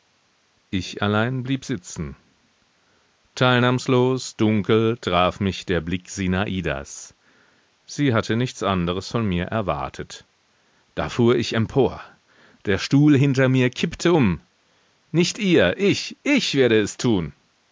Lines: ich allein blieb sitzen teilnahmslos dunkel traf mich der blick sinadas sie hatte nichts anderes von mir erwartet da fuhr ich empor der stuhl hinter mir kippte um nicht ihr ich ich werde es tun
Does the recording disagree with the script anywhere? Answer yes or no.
no